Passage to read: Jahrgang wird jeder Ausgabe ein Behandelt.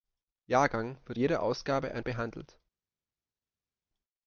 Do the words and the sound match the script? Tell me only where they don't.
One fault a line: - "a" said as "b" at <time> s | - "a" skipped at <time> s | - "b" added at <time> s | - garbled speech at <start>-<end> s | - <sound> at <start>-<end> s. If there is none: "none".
none